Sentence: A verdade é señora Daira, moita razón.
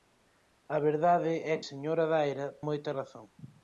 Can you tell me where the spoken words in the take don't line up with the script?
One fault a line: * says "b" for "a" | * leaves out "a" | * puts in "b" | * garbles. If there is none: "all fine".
all fine